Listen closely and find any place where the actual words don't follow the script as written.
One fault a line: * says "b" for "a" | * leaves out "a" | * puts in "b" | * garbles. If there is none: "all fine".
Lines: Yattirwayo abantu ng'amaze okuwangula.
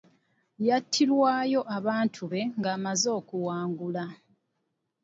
* puts in "be"